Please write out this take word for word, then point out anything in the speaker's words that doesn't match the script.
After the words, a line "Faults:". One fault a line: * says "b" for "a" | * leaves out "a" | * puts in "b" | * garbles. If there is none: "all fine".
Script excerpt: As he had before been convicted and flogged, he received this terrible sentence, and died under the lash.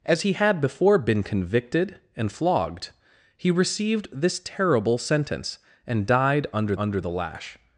As he had before been convicted and flogged, he received this terrible sentence, and died under under the lash.
Faults:
* puts in "under"